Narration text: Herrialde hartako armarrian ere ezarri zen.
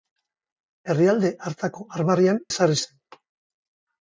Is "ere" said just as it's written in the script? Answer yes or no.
no